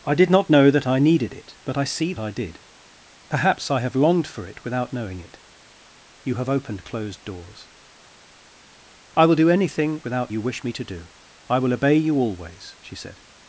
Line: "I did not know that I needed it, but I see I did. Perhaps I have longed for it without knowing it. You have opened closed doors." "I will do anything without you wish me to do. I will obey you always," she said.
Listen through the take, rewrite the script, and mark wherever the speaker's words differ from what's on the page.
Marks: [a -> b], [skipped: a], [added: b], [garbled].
"I did not know that I needed it, but I see I did. Perhaps I have longed for it without knowing it. You have opened closed doors." "I will do anything without you wish me to do. I will obey you always," she said.